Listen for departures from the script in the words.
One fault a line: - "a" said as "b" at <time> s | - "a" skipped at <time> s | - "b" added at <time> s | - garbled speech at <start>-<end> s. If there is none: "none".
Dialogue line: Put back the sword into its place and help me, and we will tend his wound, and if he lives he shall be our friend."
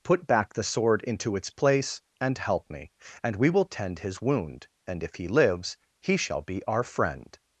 none